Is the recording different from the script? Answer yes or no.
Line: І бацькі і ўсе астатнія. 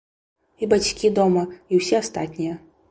yes